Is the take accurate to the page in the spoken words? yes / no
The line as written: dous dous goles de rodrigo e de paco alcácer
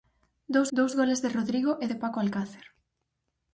yes